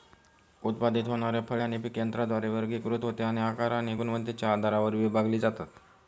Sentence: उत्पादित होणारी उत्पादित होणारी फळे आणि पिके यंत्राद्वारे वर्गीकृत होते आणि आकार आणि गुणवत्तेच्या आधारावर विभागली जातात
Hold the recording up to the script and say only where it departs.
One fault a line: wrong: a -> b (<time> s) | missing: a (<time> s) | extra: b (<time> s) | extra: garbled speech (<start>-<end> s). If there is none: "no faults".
missing: उत्पादित होणारी (1.4 s)